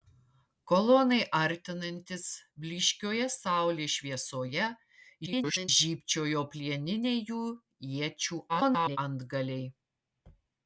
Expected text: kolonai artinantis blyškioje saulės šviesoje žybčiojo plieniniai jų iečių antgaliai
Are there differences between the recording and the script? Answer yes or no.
yes